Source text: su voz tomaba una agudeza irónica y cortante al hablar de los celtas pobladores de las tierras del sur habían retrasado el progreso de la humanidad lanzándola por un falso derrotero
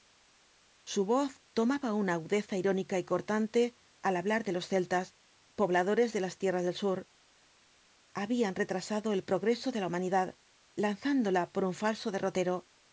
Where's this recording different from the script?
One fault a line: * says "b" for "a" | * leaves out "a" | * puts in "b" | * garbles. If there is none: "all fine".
all fine